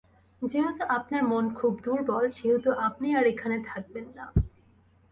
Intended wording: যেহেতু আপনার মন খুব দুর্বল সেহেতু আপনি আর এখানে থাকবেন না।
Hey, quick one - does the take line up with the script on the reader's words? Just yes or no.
yes